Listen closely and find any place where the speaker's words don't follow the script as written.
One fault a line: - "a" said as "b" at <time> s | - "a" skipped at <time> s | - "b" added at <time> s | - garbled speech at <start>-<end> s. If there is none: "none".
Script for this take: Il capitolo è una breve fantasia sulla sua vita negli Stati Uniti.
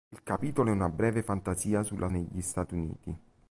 - "sua vita" skipped at 2.1 s